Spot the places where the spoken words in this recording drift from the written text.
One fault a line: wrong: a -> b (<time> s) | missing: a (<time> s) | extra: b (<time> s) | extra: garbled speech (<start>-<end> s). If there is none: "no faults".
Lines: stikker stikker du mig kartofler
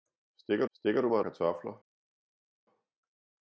no faults